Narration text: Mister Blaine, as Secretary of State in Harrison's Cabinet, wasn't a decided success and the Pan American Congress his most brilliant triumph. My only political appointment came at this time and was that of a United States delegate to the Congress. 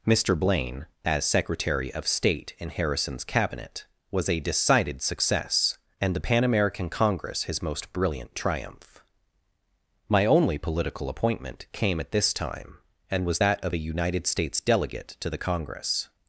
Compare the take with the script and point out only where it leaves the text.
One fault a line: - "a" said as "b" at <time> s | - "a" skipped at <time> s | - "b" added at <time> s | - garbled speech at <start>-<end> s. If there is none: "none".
- "wasn't" said as "was" at 4.1 s